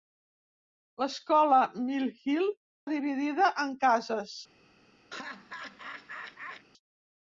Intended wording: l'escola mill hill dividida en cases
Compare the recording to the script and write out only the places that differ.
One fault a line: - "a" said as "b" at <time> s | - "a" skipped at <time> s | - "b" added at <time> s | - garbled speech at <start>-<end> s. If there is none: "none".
none